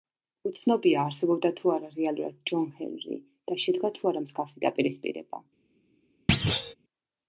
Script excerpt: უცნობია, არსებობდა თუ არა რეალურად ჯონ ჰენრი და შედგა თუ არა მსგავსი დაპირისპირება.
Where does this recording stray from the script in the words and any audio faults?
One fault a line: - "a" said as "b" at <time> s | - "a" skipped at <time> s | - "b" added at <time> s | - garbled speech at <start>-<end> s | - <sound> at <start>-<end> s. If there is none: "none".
- thud at 6.3-6.7 s